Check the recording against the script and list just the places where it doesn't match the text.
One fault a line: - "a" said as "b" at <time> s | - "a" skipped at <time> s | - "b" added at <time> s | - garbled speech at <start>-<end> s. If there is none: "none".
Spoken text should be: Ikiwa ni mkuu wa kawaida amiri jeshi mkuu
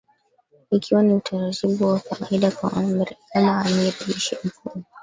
- "mkuu" said as "utaratibu" at 1.1 s
- "kama" added at 2.5 s